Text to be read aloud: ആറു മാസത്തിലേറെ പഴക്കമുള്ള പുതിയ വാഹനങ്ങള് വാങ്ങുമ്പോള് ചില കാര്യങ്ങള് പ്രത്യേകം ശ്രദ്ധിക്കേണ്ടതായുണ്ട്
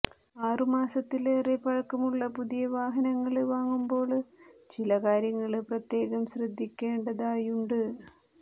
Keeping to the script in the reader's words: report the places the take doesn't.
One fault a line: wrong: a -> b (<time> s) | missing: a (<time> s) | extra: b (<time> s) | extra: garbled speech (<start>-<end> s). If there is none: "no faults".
no faults